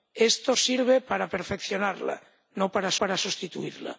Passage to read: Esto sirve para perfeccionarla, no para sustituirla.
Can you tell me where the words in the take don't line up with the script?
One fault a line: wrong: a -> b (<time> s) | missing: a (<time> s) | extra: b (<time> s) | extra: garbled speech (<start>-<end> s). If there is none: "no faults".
extra: para (3.0 s)